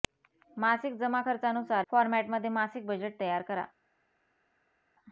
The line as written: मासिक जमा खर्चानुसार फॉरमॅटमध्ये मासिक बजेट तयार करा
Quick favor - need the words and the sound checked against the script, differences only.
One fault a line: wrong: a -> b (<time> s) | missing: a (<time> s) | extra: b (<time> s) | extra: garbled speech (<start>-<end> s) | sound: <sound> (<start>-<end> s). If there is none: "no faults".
no faults